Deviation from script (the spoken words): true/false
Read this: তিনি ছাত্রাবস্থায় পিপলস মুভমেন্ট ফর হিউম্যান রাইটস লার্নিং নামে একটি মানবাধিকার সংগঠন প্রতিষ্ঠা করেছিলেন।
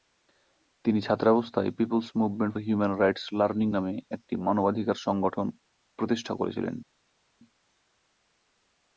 true